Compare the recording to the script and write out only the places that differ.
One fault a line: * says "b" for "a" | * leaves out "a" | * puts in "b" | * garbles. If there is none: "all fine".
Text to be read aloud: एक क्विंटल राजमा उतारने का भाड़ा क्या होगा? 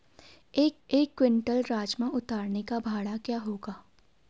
* puts in "एक"